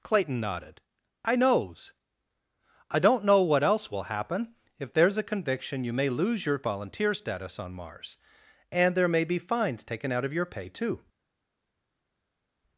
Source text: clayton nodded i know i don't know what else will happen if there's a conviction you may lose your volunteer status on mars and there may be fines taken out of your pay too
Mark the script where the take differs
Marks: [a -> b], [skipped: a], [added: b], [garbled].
clayton nodded i [know -> knows] i don't know what else will happen if there's a conviction you may lose your volunteer status on mars and there may be fines taken out of your pay too